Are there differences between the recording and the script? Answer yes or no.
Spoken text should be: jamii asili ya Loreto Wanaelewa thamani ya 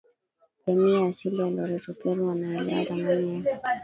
yes